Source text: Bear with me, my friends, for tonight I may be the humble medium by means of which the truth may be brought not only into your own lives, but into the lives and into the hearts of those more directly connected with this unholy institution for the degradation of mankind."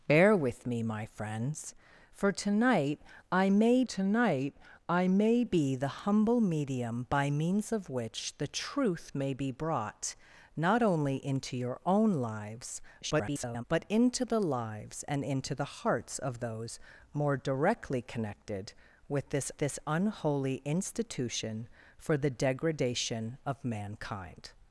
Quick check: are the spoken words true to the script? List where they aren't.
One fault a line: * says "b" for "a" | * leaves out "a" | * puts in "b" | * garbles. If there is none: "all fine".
* puts in "tonight I may"
* garbles
* puts in "this"